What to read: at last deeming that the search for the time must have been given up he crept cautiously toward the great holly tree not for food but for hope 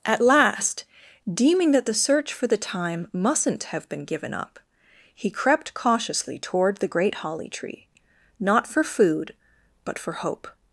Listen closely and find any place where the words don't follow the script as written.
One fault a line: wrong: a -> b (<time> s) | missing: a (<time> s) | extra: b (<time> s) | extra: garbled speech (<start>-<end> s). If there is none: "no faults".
wrong: must -> mustn't (3.1 s)